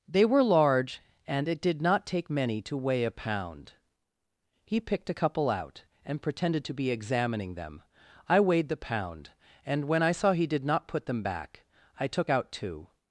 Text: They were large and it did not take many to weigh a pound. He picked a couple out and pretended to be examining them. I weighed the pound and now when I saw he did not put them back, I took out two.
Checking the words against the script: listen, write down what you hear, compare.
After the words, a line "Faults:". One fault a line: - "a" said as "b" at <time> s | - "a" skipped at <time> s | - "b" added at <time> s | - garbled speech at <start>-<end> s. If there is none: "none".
They were large and it did not take many to weigh a pound. He picked a couple out and pretended to be examining them. I weighed the pound and when I saw he did not put them back, I took out two.
Faults:
- "now" skipped at 9.9 s